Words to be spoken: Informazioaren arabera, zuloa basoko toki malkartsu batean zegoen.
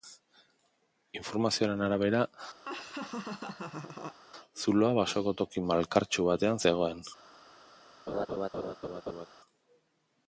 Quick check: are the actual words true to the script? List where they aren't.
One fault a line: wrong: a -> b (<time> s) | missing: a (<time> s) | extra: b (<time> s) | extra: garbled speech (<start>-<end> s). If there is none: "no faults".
no faults